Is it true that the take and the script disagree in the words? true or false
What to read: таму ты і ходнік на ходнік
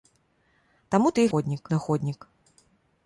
false